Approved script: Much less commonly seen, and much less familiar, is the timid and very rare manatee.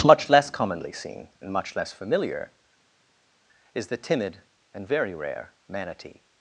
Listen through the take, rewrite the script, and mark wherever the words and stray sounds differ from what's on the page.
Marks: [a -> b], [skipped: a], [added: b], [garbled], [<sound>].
Much less commonly seen, and much less familiar, is the timid and very rare manatee.